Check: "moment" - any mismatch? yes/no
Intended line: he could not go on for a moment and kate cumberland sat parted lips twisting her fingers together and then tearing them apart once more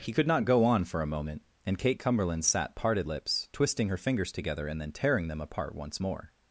no